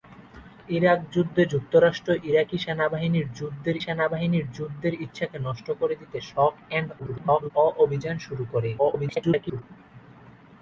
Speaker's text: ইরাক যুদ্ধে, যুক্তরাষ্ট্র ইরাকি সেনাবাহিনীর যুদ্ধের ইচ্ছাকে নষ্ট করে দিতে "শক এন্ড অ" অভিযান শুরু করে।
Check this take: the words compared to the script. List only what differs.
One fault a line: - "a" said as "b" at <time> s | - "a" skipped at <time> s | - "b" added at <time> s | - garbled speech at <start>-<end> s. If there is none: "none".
- "সেনাবাহিনীর যুদ্ধের" added at 3.8 s
- garbled speech at 7.0-7.5 s
- garbled speech at 8.8-9.6 s